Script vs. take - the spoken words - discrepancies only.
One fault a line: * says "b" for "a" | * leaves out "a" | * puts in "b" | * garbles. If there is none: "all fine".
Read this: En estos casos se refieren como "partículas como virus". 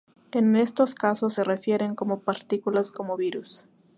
all fine